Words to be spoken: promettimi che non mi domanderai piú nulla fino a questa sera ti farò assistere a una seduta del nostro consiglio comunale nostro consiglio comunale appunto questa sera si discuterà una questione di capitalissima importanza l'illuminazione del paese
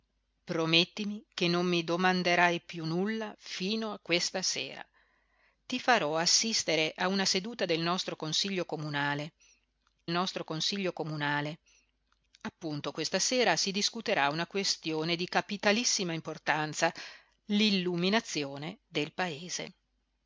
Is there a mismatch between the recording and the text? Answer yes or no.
no